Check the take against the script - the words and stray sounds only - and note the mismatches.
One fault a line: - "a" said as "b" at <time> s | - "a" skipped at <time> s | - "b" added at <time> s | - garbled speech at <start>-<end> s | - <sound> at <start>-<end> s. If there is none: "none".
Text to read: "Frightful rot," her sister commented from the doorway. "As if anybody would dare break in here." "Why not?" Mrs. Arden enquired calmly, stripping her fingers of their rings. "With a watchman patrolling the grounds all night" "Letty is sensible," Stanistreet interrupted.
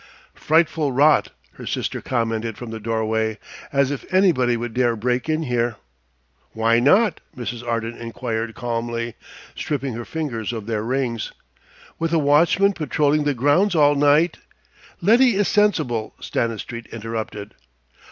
none